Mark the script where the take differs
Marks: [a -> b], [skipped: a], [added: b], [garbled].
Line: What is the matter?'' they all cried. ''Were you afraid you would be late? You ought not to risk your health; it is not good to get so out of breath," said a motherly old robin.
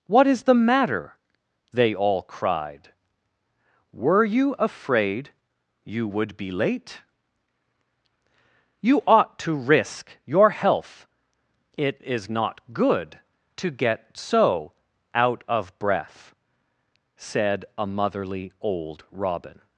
What is the matter?'' they all cried. ''Were you afraid you would be late? You ought [skipped: not] to risk your health; it is not good to get so out of breath," said a motherly old robin.